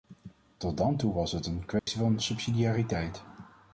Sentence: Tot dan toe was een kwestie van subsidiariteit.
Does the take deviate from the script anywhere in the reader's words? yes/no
yes